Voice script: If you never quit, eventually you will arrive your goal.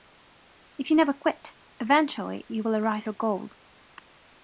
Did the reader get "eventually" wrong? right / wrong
right